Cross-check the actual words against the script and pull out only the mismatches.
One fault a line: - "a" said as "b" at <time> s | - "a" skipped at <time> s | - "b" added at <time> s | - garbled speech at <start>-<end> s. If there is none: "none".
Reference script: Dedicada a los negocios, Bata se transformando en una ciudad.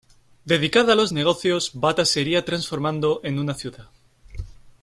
- "iría" added at 2.2 s